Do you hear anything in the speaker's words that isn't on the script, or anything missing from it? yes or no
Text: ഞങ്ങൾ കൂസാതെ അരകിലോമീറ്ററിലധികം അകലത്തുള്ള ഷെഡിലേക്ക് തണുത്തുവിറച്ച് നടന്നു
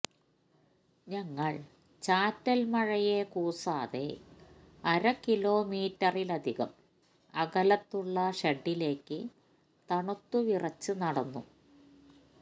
yes